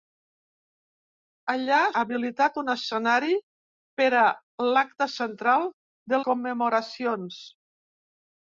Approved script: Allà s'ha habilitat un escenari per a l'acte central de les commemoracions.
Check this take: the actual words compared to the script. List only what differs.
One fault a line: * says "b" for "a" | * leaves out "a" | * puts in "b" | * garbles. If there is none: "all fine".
* leaves out "s'ha"
* leaves out "les"